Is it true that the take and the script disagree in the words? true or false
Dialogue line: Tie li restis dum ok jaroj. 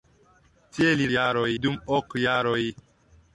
true